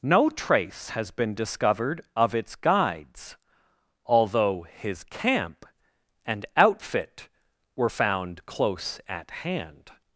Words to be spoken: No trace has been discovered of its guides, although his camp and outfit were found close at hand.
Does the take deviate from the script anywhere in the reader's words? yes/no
no